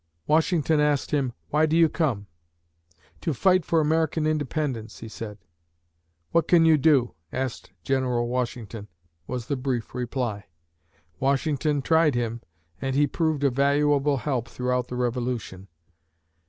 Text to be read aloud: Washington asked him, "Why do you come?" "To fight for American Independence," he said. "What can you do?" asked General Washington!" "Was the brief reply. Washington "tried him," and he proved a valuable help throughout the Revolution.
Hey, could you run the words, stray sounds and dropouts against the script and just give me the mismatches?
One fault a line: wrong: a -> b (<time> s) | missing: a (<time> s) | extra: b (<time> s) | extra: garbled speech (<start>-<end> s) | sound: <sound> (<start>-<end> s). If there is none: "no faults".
no faults